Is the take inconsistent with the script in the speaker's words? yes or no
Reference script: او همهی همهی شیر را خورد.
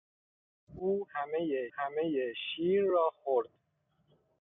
no